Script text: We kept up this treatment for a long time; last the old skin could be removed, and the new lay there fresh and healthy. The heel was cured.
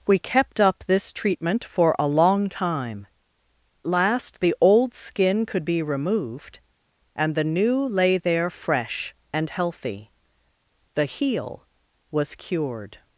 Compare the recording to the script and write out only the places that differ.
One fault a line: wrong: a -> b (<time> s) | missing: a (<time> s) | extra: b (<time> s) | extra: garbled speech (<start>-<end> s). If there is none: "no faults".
no faults